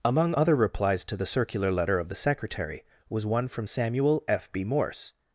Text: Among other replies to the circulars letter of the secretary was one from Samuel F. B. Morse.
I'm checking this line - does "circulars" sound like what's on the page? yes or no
no